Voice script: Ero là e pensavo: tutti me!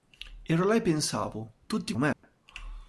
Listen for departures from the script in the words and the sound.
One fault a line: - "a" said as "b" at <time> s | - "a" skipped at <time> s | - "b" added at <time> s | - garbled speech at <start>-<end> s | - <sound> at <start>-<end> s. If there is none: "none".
- dropout at 2.1-2.2 s